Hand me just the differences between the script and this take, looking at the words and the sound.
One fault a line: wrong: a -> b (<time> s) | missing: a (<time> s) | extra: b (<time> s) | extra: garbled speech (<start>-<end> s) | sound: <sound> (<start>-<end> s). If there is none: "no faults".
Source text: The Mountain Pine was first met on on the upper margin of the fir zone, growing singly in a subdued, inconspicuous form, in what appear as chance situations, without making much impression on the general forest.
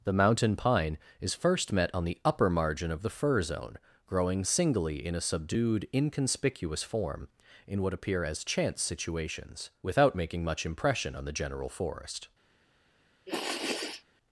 wrong: was -> is (1.2 s)
missing: on (2.0 s)
sound: sniff (13.3-14.0 s)